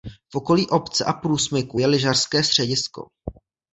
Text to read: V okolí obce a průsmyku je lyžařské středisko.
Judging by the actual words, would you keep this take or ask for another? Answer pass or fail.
pass